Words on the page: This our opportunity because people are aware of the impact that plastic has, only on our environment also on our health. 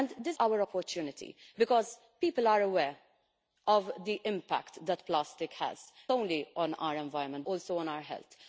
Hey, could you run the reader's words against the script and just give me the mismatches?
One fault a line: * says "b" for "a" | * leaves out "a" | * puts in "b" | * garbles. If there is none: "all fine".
all fine